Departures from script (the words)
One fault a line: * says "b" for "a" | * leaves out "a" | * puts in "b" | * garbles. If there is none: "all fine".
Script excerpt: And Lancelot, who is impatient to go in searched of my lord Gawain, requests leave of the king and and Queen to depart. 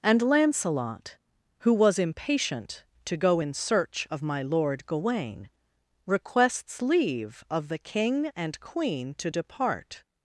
* says "was" for "is"
* says "search" for "searched"
* leaves out "and"